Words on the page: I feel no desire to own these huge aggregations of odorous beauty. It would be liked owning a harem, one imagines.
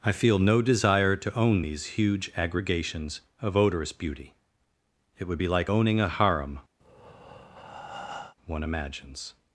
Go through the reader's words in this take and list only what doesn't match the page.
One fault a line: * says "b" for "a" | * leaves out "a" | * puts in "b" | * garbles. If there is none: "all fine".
* says "like" for "liked"